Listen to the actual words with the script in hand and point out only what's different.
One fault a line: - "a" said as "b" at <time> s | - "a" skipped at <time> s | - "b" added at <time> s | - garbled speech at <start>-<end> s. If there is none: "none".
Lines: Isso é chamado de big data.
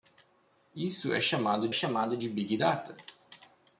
- "chamado" added at 1.7 s